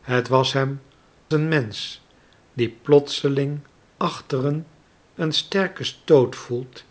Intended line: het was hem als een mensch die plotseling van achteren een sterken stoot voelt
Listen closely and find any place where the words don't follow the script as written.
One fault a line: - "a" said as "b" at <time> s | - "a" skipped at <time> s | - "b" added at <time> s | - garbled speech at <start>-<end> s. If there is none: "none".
- "als" skipped at 0.8 s
- "van" skipped at 3.7 s